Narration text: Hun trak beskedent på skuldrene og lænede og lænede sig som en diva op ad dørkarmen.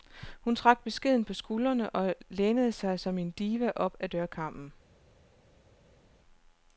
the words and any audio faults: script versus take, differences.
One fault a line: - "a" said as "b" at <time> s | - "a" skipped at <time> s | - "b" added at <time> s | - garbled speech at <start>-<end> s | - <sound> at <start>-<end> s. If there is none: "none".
- "og lænede" skipped at 2.7 s